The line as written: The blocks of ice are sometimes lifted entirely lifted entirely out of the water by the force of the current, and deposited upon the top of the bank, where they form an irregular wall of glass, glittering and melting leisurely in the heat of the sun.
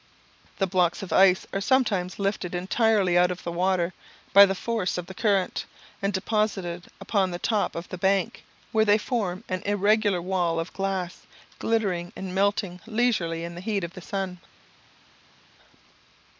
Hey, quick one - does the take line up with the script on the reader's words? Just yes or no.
no